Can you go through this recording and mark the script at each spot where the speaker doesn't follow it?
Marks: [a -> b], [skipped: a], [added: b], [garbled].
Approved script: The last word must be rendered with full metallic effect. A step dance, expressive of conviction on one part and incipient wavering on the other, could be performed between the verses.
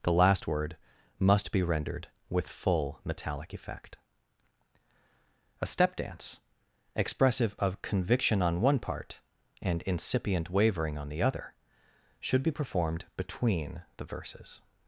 The last word must be rendered with full metallic effect. A step dance, expressive of conviction on one part and incipient wavering on the other, [could -> should] be performed between the verses.